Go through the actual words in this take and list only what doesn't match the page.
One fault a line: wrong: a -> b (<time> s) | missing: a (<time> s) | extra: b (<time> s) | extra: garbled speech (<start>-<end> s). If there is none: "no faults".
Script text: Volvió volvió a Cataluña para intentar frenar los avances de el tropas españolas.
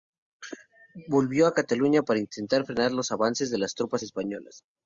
missing: volvió (1.4 s)
wrong: el -> las (3.6 s)